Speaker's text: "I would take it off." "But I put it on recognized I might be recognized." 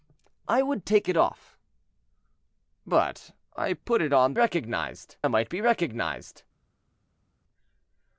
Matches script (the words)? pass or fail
pass